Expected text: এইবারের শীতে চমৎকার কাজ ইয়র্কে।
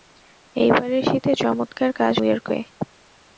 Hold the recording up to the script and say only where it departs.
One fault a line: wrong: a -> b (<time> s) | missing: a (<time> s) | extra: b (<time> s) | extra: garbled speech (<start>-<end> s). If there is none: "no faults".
no faults